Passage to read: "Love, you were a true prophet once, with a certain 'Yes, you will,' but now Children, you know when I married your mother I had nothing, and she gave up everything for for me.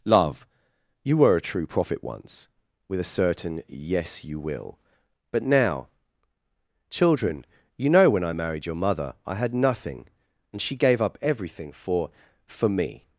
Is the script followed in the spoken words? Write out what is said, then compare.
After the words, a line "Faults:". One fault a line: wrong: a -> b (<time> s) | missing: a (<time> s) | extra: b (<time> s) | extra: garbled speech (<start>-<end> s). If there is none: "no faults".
"Love, you were a true prophet once, with a certain 'Yes, you will,' but now Children, you know when I married your mother I had nothing, and she gave up everything for for me.
Faults:
no faults